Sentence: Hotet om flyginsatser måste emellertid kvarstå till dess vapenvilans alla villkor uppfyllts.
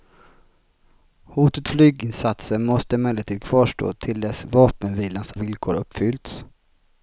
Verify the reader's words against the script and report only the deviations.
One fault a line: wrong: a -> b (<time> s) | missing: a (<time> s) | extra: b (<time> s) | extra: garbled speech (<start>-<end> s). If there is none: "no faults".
missing: om (1.7 s)
missing: alla (5.3 s)